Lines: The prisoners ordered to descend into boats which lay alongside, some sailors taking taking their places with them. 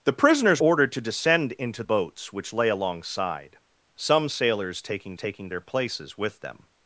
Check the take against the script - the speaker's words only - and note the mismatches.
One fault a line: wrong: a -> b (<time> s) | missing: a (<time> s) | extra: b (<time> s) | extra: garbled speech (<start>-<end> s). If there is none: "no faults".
no faults